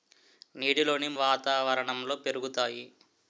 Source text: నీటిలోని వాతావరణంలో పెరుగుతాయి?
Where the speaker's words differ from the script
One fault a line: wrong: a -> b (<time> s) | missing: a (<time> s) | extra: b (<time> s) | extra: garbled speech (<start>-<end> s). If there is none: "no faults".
no faults